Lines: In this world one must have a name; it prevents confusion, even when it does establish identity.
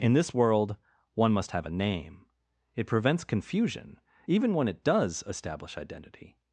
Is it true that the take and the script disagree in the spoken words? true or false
false